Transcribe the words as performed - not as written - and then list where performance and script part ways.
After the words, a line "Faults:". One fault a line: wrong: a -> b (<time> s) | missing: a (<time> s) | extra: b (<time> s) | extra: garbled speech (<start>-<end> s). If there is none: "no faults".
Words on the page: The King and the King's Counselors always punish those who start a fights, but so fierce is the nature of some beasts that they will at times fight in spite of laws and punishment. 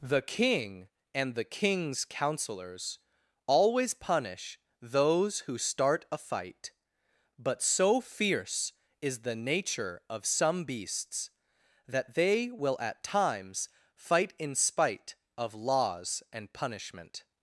The King and the King's Counselors always punish those who start a fight, but so fierce is the nature of some beasts that they will at times fight in spite of laws and punishment.
Faults:
wrong: fights -> fight (6.2 s)